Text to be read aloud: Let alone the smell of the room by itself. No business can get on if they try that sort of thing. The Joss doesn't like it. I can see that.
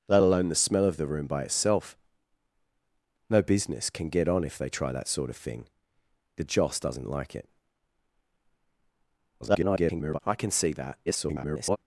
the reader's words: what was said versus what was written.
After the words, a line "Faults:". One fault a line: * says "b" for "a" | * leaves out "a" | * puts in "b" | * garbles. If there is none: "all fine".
Let alone the smell of the room by itself. No business can get on if they try that sort of thing. The Joss doesn't like it. [garbled] I can see that. [garbled]
Faults:
* garbles
* garbles